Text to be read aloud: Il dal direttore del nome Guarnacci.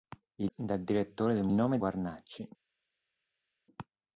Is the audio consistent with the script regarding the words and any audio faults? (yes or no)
yes